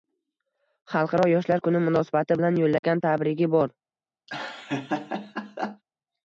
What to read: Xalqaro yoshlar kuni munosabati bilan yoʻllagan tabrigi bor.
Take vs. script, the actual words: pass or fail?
pass